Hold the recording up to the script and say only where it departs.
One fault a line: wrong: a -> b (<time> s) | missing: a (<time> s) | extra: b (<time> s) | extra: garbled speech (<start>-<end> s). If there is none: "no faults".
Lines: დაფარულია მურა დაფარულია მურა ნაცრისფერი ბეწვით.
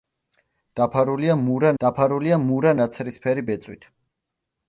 no faults